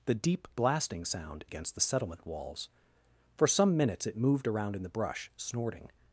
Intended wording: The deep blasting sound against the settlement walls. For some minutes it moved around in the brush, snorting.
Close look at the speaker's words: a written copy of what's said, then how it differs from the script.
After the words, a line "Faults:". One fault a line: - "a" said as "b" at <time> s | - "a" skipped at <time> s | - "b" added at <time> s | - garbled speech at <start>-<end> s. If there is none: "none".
The deep blasting sound against the settlement walls. For some minutes it moved around in the brush, snorting.
Faults:
none